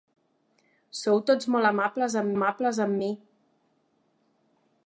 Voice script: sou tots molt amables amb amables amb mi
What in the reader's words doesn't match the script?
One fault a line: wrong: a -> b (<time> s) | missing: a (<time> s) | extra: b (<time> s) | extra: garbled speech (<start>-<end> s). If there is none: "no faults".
no faults